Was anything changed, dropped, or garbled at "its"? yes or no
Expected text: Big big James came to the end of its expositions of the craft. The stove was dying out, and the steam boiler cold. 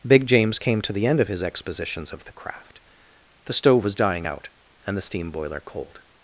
yes